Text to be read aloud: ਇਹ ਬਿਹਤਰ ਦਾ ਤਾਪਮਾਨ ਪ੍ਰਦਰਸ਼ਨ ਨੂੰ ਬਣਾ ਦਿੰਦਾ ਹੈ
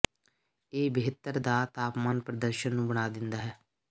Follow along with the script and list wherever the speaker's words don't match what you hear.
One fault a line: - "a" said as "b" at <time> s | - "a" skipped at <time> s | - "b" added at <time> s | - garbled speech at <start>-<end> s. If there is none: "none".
none